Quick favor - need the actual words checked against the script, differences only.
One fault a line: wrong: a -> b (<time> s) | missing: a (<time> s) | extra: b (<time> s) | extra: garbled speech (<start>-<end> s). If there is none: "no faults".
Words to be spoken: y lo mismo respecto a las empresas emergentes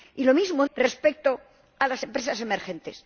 no faults